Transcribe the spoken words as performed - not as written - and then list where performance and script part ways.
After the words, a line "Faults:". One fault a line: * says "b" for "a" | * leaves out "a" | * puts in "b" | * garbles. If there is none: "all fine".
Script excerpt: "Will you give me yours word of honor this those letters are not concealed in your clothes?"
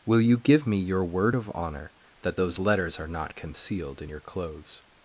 "Will you give me your word of honor that those letters are not concealed in your clothes?"
Faults:
* says "your" for "yours"
* says "that" for "this"